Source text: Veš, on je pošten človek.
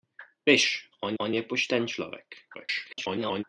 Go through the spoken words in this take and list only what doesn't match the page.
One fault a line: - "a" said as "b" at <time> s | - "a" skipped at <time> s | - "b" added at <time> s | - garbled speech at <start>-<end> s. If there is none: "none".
- "on" added at 1.2 s
- garbled speech at 2.5-3.4 s